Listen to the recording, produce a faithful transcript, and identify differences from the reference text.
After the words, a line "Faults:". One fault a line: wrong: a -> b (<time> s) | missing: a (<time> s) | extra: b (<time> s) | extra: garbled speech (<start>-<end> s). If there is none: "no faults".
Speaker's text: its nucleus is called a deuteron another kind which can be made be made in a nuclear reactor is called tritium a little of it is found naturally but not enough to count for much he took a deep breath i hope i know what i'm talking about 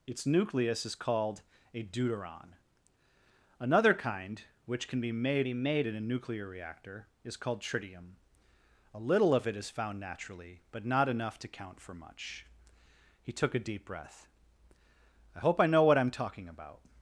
its nucleus is called a deuteron another kind which can be made be made in a nuclear reactor is called tritium a little of it is found naturally but not enough to count for much he took a deep breath i hope i know what i'm talking about
Faults:
no faults